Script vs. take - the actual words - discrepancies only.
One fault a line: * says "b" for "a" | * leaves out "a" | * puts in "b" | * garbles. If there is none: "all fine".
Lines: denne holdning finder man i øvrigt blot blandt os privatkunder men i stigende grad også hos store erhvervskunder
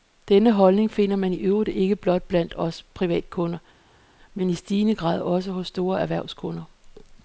* puts in "ikke"